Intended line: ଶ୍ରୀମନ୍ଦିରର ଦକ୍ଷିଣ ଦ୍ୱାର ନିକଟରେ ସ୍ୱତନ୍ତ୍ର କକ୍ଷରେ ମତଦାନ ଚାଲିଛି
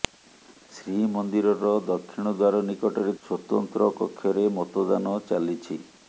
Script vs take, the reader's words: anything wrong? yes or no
no